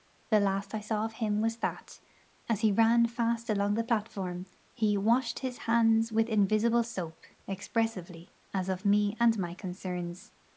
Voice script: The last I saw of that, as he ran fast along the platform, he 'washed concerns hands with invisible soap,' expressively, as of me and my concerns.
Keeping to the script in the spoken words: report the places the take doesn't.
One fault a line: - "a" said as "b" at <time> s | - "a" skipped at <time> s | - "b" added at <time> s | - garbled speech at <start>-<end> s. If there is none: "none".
- "him was" added at 1.1 s
- "concerns" said as "his" at 5.4 s